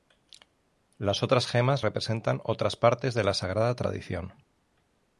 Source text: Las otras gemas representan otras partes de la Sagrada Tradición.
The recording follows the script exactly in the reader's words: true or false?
true